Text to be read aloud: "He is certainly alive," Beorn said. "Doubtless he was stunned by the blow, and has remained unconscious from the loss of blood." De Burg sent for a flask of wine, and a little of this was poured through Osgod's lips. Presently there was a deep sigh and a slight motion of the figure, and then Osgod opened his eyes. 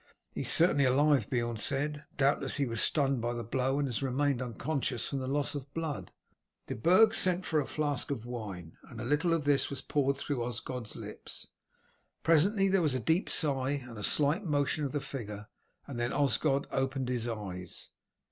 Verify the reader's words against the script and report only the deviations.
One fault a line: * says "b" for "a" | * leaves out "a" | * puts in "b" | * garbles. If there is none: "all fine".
all fine